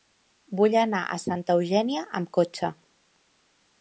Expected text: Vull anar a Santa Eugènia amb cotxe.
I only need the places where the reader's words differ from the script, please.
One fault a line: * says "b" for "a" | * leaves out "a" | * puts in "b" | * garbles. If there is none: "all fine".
all fine